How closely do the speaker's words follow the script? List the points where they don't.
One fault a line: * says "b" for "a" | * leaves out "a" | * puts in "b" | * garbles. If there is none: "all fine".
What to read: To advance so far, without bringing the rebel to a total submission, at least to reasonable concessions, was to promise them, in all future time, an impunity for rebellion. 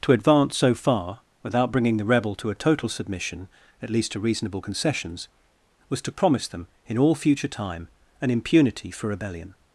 all fine